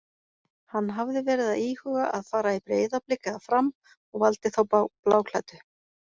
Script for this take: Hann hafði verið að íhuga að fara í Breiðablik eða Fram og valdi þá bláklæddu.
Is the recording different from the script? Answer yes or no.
no